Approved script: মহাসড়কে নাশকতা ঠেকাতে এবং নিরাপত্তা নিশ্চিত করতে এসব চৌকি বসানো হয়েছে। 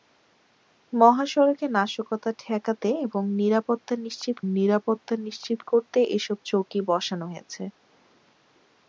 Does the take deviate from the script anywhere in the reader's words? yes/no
yes